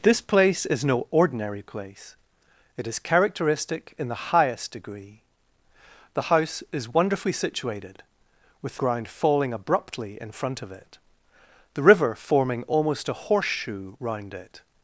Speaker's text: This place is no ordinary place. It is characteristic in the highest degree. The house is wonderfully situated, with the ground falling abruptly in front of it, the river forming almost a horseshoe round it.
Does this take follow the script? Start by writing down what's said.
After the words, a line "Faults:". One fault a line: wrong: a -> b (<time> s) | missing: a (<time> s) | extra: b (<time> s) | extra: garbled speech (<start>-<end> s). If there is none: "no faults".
This place is no ordinary place. It is characteristic in the highest degree. The house is wonderfully situated, with ground falling abruptly in front of it, the river forming almost a horseshoe round it.
Faults:
missing: the (8.8 s)